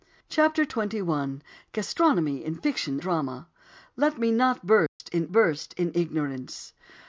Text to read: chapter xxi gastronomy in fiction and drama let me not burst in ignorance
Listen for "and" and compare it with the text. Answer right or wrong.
wrong